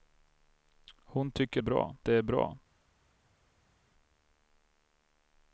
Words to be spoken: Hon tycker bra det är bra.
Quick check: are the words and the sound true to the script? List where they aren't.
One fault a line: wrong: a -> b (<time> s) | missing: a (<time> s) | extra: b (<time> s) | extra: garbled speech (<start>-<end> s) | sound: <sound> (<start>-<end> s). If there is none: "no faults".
no faults